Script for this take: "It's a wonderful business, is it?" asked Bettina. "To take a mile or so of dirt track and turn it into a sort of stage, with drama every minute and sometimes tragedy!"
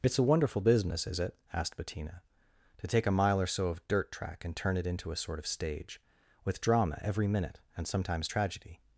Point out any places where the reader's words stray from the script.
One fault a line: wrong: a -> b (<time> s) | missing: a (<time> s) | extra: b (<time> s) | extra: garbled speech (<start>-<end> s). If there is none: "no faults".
no faults